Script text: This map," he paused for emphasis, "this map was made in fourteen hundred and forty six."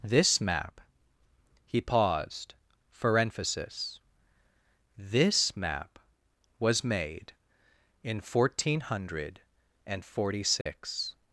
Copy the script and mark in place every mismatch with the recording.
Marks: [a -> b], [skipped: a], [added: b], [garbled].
This map," he paused for emphasis, "this map was made in fourteen hundred and forty six."